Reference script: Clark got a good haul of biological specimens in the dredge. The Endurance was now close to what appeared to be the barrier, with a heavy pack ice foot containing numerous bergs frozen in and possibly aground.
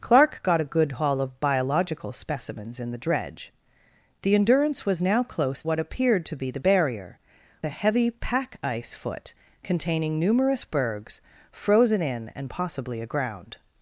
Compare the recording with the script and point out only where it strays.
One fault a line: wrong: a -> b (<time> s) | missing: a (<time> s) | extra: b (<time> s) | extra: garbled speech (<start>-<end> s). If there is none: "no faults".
missing: to (5.6 s)
missing: with (7.2 s)